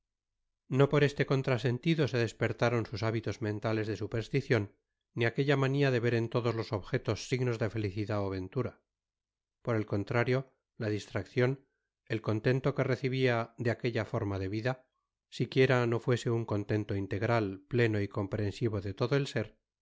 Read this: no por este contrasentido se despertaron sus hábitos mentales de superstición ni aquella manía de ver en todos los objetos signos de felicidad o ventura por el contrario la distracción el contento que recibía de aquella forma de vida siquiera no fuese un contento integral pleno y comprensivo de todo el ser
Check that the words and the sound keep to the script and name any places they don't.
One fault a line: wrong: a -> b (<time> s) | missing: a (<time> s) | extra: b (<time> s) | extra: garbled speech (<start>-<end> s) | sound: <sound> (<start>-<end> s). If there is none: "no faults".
no faults